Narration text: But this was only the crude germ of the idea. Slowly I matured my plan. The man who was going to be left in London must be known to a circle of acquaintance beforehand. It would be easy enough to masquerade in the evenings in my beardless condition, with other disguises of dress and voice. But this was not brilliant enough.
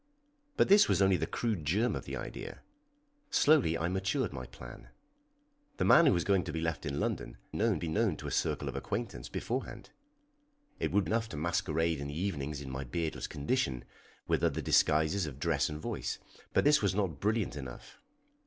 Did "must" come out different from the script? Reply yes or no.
yes